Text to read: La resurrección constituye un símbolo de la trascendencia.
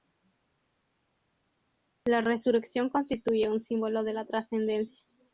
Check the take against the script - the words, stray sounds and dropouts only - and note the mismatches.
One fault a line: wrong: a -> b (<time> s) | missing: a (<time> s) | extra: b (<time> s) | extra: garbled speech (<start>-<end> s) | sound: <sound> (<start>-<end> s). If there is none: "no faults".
no faults